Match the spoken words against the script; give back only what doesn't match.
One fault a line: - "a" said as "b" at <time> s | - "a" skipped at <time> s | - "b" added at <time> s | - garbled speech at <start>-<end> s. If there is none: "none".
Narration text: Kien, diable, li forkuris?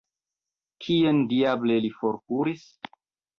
none